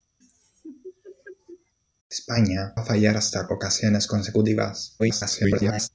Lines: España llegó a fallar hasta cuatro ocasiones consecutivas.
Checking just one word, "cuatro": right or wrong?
wrong